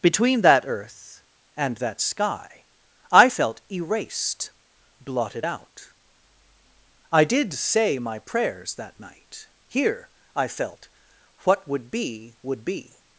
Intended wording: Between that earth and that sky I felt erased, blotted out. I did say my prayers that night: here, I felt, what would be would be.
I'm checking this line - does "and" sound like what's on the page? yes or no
yes